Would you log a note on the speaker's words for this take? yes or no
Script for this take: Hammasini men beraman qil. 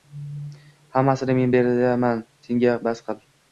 yes